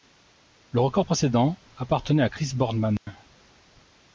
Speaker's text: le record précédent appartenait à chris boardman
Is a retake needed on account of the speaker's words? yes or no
no